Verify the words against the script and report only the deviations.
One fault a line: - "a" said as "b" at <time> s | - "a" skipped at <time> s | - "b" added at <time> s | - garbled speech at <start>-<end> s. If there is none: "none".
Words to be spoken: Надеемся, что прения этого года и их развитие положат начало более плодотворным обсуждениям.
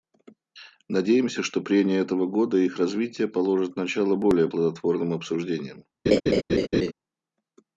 none